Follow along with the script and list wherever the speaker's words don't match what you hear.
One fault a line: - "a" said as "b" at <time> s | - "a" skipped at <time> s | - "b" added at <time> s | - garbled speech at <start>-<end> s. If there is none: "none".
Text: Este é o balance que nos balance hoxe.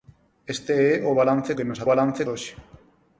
none